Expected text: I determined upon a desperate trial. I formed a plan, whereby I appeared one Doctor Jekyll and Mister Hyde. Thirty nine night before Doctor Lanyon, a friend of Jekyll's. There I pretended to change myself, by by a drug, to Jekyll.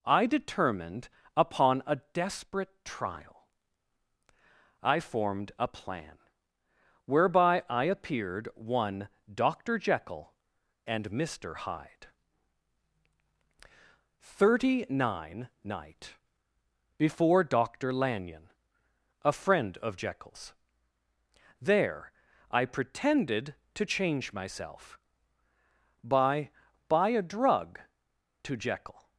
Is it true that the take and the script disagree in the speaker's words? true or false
false